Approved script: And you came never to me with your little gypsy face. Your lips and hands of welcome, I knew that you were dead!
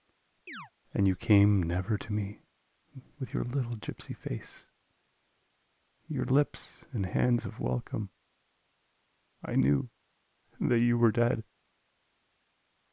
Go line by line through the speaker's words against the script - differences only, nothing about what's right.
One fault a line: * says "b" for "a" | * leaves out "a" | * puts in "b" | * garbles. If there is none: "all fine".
all fine